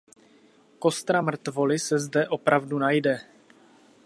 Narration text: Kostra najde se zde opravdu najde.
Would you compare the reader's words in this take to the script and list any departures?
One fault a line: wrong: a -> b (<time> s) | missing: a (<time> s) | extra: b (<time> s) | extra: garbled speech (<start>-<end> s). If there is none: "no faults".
wrong: najde -> mrtvoly (1.2 s)